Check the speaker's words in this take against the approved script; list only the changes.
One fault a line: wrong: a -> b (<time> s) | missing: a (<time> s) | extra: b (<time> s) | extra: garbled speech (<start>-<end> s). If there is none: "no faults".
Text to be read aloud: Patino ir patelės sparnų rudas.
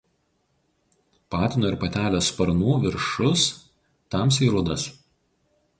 extra: viršus tamsiai (2.9 s)